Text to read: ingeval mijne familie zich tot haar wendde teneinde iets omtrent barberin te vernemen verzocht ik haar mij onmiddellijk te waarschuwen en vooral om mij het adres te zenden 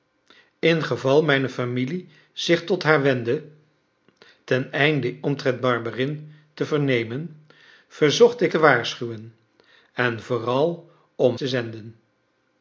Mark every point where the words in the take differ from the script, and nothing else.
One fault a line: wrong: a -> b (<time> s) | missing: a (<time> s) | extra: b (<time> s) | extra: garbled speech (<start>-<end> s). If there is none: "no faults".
missing: iets (5.2 s)
missing: haar mij onmiddellijk (8.5 s)
missing: mij het adres (11.4 s)